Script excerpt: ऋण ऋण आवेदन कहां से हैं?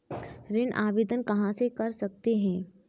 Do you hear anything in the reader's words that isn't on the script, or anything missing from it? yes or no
yes